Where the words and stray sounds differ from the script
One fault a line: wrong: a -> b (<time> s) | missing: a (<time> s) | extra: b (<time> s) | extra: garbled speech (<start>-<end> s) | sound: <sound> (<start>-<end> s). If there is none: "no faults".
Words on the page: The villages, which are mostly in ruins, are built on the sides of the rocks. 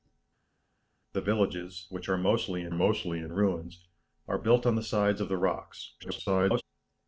extra: mostly in (2.7 s)
extra: garbled speech (6.0-6.6 s)